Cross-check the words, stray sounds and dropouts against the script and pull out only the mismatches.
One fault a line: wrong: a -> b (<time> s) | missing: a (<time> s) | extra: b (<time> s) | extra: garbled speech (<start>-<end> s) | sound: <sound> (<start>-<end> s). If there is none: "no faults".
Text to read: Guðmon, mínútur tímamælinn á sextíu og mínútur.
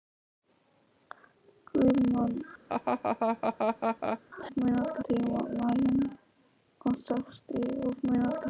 sound: laugh (2.7-4.2 s)